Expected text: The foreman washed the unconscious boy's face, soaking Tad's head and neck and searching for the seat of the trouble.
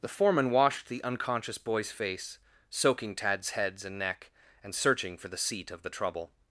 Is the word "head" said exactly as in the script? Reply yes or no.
no